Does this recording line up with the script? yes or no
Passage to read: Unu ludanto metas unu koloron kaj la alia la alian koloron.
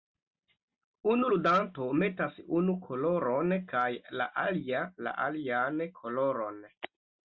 yes